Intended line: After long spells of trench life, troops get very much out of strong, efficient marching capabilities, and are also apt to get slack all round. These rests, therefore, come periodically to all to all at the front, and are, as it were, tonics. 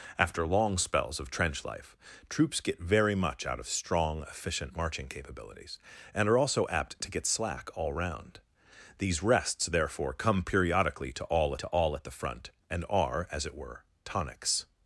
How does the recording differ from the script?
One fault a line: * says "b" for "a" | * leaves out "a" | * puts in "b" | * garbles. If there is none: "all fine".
all fine